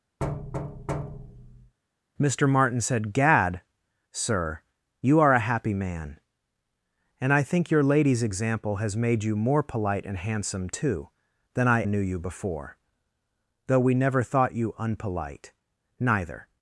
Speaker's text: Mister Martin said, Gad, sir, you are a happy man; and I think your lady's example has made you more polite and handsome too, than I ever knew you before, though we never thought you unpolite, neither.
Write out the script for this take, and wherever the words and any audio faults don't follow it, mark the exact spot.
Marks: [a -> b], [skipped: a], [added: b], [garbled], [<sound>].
[thud] Mister Martin said, Gad, sir, you are a happy man; and I think your lady's example has made you more polite and handsome too, than I [skipped: ever] knew you before, though we never thought you unpolite, neither.